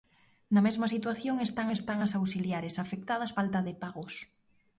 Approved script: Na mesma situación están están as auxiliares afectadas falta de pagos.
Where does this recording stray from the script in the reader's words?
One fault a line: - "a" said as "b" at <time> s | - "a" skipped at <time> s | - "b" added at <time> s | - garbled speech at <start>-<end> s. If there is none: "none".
none